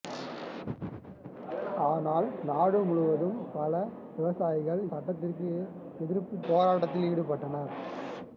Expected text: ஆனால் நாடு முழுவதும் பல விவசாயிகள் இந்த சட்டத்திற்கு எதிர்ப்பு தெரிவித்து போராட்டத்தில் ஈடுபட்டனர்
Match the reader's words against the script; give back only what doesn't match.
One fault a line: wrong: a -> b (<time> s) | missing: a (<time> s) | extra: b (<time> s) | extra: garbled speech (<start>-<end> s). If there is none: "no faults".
missing: இந்த (4.8 s)
missing: தெரிவித்து (6.4 s)